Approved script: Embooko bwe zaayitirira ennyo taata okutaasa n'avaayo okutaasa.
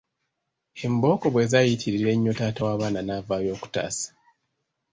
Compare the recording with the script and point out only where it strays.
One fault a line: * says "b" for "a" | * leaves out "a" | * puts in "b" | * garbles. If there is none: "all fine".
* says "w'abaana" for "okutaasa"